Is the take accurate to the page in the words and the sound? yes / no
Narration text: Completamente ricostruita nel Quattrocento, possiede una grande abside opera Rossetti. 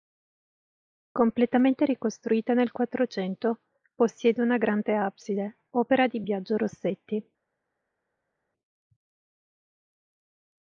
no